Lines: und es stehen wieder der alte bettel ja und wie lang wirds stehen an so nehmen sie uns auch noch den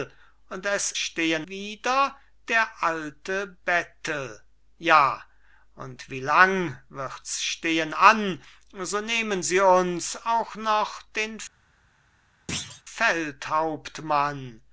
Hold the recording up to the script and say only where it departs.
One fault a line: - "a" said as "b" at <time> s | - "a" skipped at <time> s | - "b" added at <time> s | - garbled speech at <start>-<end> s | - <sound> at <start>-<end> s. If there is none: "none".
- thud at 12.5-12.8 s